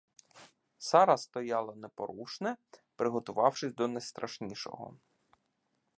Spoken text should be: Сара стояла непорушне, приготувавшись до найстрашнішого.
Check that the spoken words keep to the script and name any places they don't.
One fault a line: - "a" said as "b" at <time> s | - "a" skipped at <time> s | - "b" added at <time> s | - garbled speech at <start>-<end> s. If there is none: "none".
none